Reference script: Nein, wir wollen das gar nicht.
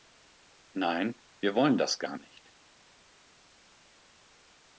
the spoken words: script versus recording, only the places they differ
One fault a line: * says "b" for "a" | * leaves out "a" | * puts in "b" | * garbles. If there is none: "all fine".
all fine